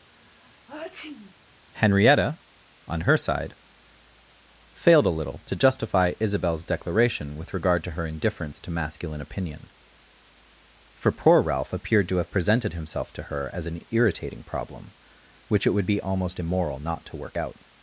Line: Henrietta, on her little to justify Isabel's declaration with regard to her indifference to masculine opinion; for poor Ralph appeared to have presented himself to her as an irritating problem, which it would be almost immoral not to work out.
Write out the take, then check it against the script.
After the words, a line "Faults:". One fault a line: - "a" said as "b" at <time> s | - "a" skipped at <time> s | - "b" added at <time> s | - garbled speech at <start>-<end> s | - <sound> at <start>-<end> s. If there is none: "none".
Henrietta, on her side, failed a little to justify Isabel's declaration with regard to her indifference to masculine opinion; for poor Ralph appeared to have presented himself to her as an irritating problem, which it would be almost immoral not to work out.
Faults:
- sneeze at 0.1-1.3 s
- "side failed a" added at 3.2 s